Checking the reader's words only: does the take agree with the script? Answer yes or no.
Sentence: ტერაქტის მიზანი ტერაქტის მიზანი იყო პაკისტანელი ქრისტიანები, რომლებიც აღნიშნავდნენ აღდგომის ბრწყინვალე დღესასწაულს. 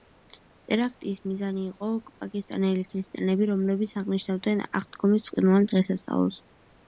no